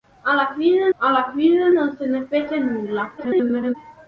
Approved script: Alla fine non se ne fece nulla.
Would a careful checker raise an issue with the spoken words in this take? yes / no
yes